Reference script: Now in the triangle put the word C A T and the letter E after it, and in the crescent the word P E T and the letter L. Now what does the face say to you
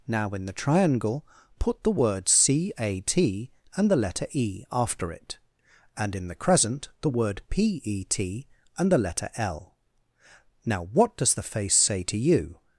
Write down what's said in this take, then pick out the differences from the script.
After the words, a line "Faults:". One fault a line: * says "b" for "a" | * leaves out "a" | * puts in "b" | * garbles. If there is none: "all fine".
Now in the triangle put the word C A T and the letter E after it, and in the crescent the word P E T and the letter L. Now what does the face say to you
Faults:
all fine